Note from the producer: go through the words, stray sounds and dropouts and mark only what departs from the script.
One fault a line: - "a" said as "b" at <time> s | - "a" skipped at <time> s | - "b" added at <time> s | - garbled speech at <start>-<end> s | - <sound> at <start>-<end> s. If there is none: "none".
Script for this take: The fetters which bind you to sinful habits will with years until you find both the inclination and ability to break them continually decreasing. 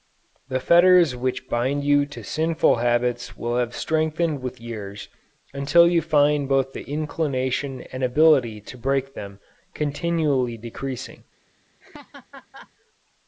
- "have strengthened" added at 3.6 s
- laugh at 11.8-12.7 s